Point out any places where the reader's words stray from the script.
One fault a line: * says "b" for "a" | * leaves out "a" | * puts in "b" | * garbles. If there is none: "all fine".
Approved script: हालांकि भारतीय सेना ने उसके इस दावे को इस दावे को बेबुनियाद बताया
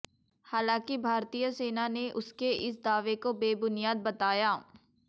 * leaves out "इस दावे को"